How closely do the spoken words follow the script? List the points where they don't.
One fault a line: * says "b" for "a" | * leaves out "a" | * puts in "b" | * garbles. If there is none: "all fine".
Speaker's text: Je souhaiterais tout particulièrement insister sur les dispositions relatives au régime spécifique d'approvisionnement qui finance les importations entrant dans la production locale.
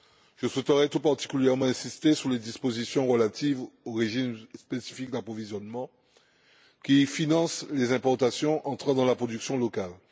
all fine